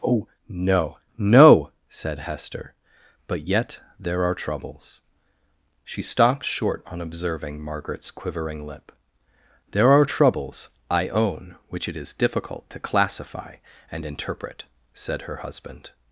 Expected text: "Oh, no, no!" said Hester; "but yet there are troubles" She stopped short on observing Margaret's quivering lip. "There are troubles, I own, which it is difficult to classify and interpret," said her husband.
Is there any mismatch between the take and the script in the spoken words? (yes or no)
no